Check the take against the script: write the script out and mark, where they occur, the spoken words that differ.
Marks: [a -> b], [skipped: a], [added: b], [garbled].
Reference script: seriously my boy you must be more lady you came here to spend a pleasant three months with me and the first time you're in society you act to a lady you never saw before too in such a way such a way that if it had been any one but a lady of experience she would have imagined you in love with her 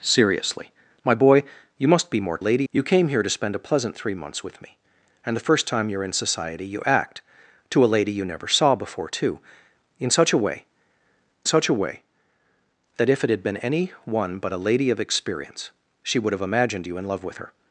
seriously my boy you must be more lady you came here to spend a pleasant three months with me and the first time you're in society you act to a lady you never saw before too in such a way such a way that if it had been any one but a lady of experience she would have imagined you in love with her